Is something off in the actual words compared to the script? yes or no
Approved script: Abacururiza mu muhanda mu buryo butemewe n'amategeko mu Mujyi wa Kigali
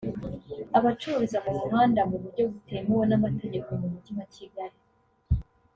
no